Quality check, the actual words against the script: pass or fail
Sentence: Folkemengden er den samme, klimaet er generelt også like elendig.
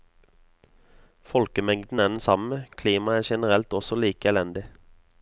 pass